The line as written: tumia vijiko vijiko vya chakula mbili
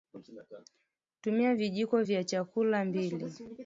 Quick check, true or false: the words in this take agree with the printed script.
false